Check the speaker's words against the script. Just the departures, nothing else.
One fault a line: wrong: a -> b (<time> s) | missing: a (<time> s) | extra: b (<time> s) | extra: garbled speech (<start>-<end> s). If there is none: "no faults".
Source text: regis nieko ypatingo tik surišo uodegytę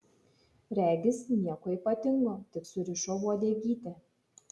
no faults